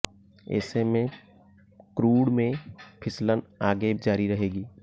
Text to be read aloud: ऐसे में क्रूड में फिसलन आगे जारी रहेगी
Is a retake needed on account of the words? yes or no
no